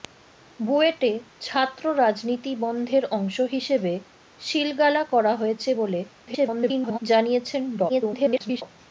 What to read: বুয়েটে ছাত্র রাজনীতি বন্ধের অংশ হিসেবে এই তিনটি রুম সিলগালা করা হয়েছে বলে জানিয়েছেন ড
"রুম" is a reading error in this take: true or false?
true